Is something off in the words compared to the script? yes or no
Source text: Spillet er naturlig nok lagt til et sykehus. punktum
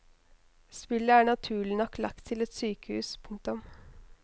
no